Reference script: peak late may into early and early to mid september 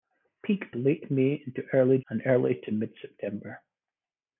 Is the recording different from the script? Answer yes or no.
no